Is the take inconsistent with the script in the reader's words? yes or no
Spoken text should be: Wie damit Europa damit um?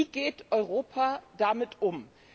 yes